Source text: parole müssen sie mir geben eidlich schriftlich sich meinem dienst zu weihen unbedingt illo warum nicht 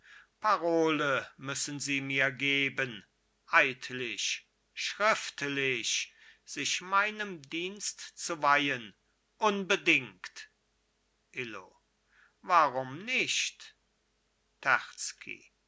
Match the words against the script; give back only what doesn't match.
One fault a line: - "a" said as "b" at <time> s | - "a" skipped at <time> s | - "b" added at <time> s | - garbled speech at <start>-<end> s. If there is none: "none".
none